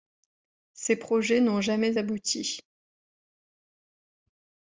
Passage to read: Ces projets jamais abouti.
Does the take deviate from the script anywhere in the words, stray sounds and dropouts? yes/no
yes